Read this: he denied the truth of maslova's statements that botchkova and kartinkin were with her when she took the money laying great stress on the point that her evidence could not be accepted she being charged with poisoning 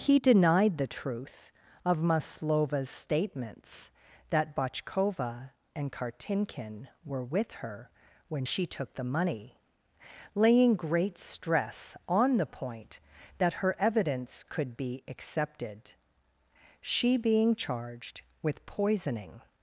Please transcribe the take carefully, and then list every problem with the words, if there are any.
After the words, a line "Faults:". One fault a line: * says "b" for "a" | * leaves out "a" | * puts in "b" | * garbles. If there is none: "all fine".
he denied the truth of maslova's statements that botchkova and kartinkin were with her when she took the money laying great stress on the point that her evidence could be accepted she being charged with poisoning
Faults:
* leaves out "not"